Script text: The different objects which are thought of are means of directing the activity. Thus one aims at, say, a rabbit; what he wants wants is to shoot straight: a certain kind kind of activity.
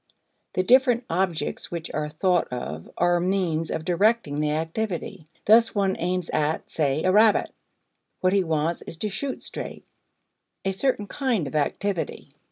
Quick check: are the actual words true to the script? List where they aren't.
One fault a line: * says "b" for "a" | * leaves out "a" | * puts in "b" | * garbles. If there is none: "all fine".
* leaves out "wants"
* leaves out "kind"